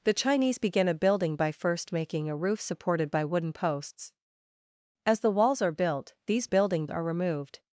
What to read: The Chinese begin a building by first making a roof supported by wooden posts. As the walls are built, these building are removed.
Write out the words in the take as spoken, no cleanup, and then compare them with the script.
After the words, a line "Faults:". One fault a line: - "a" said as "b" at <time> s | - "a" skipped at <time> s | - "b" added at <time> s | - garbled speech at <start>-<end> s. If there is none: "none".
The Chinese begin a building by first making a roof supported by wooden posts. As the walls are built, these building are removed.
Faults:
none